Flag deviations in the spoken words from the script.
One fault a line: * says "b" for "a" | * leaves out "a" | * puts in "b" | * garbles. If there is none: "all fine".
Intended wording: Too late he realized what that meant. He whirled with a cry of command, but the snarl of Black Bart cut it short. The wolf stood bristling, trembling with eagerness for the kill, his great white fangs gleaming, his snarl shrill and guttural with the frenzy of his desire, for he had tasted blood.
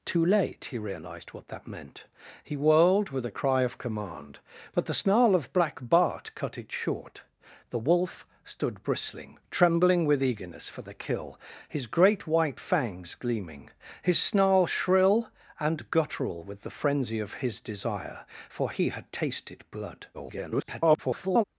* garbles